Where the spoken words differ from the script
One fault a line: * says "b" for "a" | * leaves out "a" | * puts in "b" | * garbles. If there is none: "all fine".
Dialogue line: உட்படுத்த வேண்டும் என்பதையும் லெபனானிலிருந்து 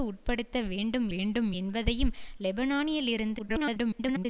* puts in "வேண்டும்"
* garbles